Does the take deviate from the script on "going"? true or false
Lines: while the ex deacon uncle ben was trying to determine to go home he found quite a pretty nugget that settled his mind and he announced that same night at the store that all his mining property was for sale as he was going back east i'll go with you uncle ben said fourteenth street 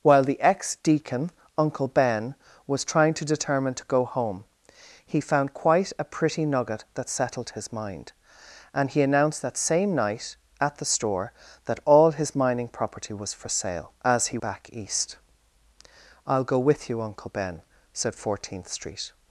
true